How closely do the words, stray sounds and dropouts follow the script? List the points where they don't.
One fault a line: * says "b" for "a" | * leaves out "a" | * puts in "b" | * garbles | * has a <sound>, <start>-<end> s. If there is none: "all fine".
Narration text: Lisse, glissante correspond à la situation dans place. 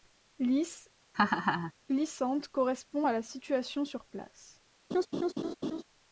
* has a laugh, 1.1-1.7 s
* says "sur" for "dans"
* has a laugh, 4.9-5.8 s